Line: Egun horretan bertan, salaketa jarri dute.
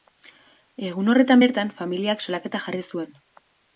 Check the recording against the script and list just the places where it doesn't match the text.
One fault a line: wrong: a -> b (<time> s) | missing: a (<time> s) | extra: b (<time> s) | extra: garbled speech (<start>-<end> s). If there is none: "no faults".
extra: familiak (1.8 s)
wrong: dute -> zuen (2.9 s)